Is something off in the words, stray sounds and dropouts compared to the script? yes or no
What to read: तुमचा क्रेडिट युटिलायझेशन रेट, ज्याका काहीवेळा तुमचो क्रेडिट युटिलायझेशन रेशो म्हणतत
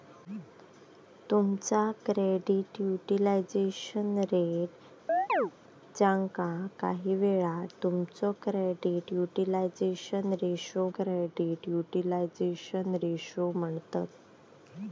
yes